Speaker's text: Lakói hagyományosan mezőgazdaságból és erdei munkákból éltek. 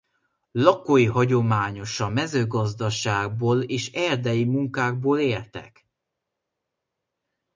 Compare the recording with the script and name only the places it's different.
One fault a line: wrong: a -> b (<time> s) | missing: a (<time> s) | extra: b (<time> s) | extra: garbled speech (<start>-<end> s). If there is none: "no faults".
no faults